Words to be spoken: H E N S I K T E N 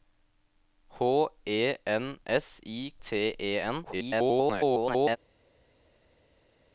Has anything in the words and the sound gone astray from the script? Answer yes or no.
yes